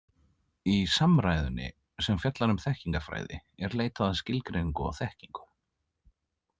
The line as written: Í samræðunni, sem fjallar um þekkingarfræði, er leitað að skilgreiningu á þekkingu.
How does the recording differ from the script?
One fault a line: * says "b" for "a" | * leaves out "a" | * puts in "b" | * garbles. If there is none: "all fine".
all fine